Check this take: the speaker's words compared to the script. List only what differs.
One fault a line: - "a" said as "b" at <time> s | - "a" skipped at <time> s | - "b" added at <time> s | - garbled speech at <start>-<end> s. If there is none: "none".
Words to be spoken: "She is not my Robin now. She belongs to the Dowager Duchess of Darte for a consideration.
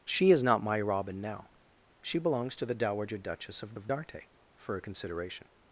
- "of" added at 3.7 s